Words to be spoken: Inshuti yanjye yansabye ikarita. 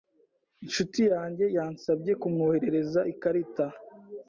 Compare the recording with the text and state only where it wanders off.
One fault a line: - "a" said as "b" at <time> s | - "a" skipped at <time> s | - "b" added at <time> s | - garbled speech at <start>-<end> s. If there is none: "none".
- "kumwoherereza" added at 2.2 s